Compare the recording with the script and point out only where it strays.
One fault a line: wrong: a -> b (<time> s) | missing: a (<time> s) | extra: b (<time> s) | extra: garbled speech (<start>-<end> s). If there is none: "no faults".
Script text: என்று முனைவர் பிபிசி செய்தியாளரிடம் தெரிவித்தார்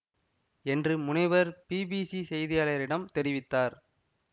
no faults